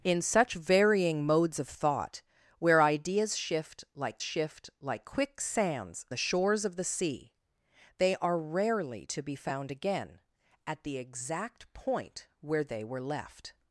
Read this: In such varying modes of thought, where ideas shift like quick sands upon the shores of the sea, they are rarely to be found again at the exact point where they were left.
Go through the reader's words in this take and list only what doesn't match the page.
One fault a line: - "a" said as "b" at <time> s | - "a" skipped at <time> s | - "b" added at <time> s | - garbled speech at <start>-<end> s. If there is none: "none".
- "shift like" added at 4.2 s
- "upon" skipped at 6.1 s